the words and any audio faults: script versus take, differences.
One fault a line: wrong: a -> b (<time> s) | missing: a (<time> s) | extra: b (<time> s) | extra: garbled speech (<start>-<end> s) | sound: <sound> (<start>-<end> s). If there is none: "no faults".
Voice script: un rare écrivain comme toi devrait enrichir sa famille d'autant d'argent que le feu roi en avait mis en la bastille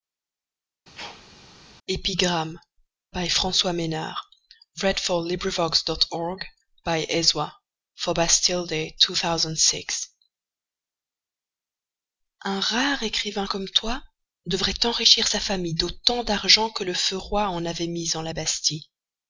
sound: sneeze (0.9-1.3 s)